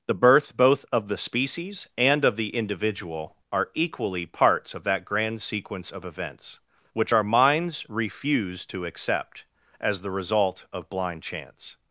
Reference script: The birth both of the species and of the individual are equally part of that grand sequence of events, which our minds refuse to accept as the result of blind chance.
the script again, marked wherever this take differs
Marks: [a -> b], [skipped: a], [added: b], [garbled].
The birth both of the species and of the individual are equally [part -> parts] of that grand sequence of events, which our minds refuse to accept as the result of blind chance.